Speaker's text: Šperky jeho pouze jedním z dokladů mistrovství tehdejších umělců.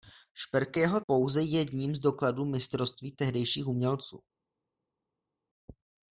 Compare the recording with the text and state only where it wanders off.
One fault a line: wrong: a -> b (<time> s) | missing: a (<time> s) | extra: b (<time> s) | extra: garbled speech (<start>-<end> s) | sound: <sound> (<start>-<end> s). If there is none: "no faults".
no faults